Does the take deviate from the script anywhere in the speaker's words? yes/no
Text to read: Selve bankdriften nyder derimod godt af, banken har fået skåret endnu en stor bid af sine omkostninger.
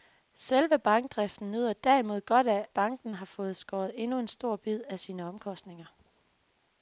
no